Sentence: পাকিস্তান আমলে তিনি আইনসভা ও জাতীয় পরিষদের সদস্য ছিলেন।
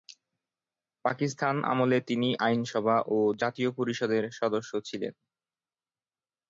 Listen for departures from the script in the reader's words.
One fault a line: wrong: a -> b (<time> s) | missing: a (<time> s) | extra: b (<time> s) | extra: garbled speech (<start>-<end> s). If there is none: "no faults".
no faults